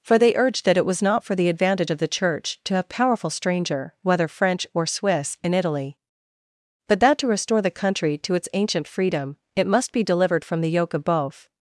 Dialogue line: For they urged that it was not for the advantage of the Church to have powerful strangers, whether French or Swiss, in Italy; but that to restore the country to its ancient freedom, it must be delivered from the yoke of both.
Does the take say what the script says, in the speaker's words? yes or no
no